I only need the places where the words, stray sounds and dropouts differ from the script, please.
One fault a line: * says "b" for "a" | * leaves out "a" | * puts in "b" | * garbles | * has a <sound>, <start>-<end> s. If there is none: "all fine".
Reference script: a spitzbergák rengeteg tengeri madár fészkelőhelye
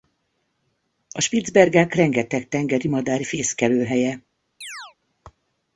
* has a chirp, 4.6-5.0 s